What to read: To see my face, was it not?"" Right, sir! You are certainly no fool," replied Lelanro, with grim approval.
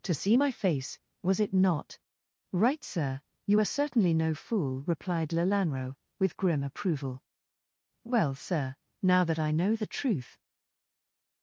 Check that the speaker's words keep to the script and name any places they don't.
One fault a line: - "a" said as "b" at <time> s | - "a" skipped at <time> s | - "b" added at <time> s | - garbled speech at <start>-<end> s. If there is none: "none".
- "Well sir now that I know the truth" added at 8.0 s